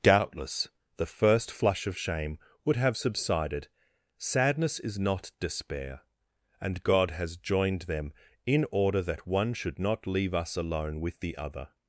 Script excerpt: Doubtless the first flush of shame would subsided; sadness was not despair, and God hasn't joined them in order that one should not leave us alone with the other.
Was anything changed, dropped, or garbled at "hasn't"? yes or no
yes